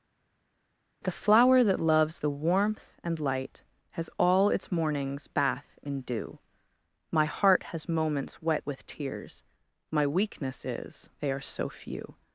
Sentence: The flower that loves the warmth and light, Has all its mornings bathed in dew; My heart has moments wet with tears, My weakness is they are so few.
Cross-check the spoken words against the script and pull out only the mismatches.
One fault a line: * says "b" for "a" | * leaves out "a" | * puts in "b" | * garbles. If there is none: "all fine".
* says "bath" for "bathed"